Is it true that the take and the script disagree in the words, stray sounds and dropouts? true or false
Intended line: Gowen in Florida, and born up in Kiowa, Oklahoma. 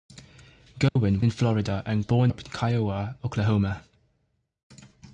true